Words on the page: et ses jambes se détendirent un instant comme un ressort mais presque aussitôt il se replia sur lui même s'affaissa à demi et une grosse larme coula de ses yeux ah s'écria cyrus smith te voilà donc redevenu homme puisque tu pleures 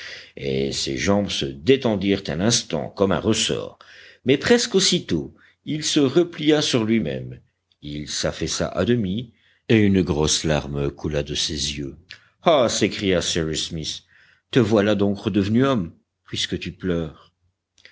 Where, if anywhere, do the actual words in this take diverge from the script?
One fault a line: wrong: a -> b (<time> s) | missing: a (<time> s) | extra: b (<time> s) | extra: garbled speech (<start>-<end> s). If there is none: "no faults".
extra: il (7.8 s)